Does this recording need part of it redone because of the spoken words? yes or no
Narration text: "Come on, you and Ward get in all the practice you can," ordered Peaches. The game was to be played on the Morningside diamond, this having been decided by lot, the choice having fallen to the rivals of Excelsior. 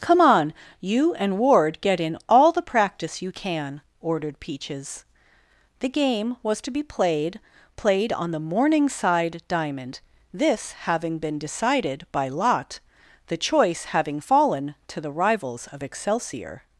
yes